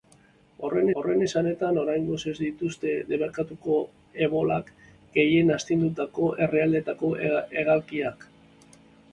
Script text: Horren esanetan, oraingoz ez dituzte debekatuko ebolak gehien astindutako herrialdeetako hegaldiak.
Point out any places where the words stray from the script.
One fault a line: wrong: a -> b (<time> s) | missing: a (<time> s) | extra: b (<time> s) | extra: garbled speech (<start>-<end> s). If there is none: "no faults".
extra: horren (1.0 s)